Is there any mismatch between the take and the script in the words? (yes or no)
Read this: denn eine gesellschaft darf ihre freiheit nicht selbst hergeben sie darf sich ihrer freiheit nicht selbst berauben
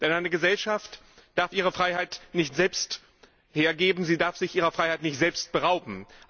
no